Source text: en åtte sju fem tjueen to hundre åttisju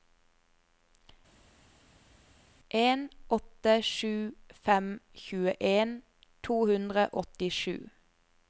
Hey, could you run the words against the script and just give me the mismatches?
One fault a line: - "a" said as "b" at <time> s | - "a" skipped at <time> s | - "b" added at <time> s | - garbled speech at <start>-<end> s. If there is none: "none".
none